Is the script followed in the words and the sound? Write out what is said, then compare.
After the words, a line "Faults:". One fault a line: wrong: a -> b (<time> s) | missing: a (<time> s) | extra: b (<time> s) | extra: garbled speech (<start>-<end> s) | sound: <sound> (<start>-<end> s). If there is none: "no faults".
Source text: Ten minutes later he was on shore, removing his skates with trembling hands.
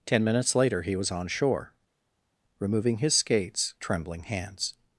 Ten minutes later he was on shore, removing his skates trembling hands.
Faults:
missing: with (3.7 s)